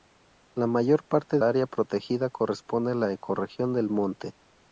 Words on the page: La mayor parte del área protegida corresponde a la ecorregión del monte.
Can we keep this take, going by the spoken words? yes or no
no